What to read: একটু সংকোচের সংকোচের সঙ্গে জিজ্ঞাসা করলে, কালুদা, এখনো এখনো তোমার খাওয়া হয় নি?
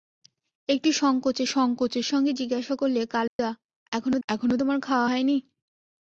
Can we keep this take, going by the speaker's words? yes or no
yes